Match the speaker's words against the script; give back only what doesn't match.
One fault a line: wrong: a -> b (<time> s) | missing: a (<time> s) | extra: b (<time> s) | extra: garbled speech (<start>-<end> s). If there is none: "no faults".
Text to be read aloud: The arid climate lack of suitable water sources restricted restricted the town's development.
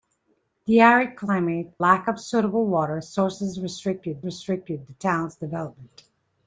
no faults